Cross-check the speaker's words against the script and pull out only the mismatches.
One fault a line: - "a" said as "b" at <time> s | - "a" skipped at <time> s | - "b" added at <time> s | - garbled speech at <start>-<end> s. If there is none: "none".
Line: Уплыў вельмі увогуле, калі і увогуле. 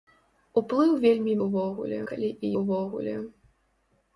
none